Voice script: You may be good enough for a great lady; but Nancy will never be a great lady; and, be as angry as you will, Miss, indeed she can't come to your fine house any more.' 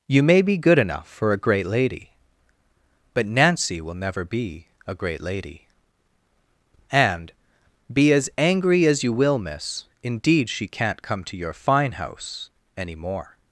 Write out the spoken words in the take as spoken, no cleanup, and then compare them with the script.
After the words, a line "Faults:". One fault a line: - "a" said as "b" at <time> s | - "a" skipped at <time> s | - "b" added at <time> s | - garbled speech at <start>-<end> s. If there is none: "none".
You may be good enough for a great lady; but Nancy will never be a great lady; and, be as angry as you will, Miss, indeed she can't come to your fine house any more.'
Faults:
none